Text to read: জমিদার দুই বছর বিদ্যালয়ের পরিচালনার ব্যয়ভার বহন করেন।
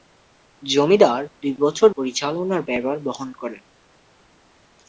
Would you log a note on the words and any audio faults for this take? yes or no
yes